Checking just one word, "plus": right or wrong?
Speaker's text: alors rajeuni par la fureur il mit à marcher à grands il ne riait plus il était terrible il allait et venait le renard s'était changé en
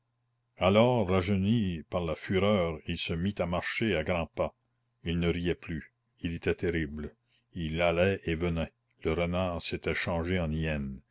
right